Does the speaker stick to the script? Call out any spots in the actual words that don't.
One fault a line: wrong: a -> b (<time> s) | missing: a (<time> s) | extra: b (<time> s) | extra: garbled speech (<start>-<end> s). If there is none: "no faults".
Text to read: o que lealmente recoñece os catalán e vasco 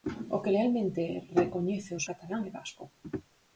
no faults